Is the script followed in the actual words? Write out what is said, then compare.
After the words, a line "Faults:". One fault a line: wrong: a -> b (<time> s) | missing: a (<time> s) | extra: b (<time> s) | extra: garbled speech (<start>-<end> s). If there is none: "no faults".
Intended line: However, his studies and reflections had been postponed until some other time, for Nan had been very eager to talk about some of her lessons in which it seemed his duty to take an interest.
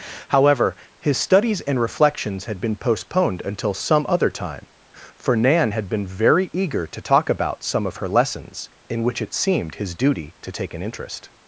However, his studies and reflections had been postponed until some other time, for Nan had been very eager to talk about some of her lessons in which it seemed his duty to take an interest.
Faults:
no faults